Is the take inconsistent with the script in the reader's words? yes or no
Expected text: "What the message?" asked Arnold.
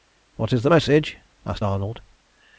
yes